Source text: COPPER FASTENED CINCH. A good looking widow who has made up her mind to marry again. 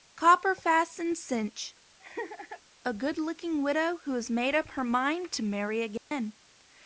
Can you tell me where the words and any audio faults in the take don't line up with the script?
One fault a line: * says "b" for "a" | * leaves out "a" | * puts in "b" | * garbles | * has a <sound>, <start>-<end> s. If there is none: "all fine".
* has a laugh, 2.0-2.6 s
* has a dropout, 6.0-6.1 s